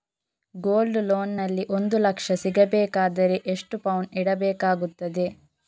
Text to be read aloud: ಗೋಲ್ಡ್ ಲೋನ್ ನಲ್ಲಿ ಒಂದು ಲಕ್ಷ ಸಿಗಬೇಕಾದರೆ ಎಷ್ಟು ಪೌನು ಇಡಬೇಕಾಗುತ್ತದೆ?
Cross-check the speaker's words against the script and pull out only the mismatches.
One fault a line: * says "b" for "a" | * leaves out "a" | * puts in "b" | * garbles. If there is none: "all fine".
all fine